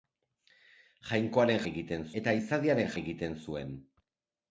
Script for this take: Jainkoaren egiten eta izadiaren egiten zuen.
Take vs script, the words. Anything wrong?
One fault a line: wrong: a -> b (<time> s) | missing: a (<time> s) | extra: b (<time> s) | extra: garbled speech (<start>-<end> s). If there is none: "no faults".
no faults